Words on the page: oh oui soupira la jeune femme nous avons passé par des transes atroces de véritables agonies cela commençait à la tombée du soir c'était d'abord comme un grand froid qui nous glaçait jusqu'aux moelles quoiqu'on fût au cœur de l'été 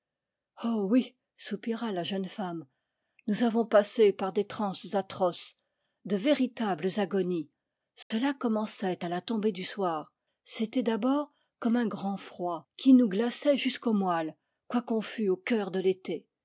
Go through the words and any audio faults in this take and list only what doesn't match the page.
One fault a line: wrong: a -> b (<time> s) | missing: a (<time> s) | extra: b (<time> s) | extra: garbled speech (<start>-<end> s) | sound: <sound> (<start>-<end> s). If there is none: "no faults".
sound: dropout (8.0-8.1 s)